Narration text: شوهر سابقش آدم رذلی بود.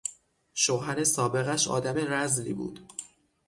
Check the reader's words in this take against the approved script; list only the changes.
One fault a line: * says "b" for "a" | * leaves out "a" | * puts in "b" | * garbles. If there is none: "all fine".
all fine